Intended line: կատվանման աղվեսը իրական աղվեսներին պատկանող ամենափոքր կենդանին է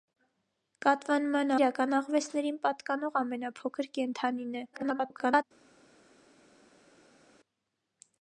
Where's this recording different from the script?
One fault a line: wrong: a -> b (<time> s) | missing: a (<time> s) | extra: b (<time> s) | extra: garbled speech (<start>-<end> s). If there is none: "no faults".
missing: աղվեսը (1.5 s)
extra: garbled speech (4.7-5.4 s)